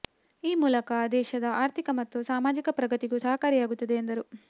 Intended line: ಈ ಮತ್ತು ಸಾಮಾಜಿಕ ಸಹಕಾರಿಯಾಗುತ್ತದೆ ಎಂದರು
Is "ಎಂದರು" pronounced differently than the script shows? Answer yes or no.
no